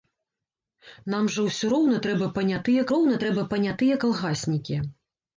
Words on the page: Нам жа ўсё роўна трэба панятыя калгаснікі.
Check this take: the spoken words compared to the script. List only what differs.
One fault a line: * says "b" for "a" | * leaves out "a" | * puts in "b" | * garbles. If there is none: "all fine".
* puts in "роўна трэба панятыя"